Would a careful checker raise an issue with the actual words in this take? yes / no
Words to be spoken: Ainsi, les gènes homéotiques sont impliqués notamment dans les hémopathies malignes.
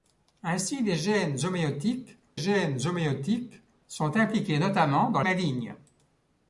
yes